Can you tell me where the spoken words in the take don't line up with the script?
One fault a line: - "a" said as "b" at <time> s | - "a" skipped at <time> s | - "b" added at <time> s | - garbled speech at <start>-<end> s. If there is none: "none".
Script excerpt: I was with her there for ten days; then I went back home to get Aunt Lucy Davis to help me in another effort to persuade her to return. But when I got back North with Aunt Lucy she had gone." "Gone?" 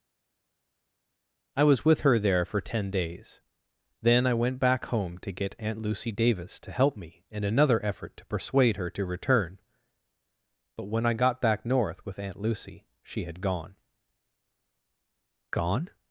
none